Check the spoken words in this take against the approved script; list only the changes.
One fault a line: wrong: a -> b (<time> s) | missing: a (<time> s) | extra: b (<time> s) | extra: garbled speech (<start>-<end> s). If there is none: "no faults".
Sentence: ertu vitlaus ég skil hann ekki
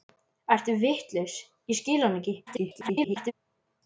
extra: garbled speech (2.5-3.3 s)